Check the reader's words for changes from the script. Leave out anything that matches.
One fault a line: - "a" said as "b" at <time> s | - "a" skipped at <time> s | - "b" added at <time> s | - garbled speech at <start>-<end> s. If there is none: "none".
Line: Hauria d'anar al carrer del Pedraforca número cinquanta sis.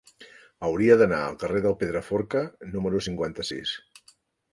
none